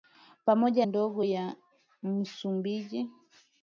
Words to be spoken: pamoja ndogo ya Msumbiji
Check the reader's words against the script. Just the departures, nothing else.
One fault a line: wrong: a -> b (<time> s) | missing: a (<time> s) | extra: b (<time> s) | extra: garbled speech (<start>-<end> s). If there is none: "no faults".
no faults